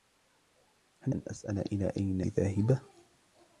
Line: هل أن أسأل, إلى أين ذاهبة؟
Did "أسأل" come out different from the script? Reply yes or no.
no